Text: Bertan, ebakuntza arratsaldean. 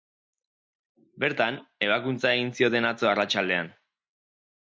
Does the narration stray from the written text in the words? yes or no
yes